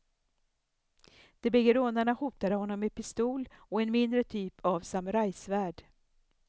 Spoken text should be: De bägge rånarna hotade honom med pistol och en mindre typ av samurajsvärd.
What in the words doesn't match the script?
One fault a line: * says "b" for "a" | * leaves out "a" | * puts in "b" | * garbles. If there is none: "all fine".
all fine